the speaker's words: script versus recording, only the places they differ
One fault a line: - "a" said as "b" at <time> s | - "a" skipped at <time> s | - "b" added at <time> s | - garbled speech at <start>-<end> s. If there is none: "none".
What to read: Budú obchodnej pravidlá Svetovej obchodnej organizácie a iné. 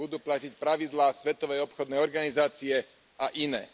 - "obchodnej" said as "platiť" at 0.2 s